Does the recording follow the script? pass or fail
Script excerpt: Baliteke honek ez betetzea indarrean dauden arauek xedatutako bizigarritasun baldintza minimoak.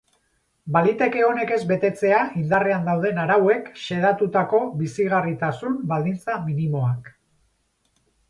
pass